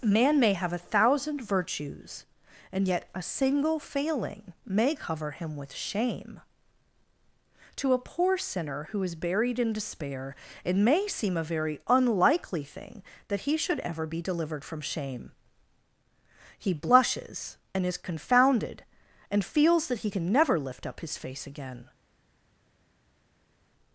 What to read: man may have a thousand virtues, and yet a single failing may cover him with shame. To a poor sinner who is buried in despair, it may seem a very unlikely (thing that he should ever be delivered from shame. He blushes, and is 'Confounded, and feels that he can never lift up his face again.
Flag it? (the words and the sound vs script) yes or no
no